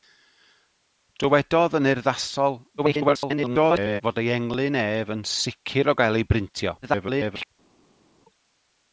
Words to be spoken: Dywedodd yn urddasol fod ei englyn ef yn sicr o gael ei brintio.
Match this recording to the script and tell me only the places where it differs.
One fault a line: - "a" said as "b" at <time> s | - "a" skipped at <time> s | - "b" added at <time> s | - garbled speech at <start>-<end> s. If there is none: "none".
- garbled speech at 2.8-4.0 s
- garbled speech at 6.8-7.5 s